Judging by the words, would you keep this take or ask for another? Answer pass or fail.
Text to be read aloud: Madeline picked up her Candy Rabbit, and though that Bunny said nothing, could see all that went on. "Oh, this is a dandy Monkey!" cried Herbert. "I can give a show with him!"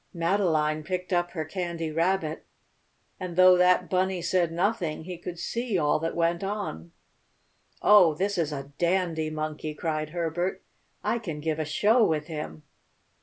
fail